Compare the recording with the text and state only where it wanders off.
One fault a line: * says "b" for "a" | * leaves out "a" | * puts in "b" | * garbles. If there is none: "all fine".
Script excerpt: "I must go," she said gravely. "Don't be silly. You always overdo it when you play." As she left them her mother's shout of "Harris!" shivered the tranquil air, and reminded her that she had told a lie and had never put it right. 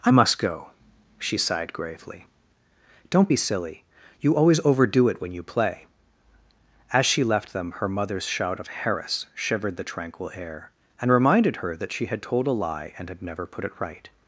* says "sighed" for "said"